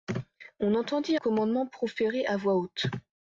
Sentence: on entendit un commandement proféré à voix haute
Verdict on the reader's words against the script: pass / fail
fail